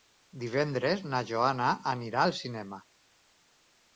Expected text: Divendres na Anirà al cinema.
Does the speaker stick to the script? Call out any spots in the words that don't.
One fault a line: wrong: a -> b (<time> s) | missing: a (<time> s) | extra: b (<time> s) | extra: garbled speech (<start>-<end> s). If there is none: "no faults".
extra: Joana (1.3 s)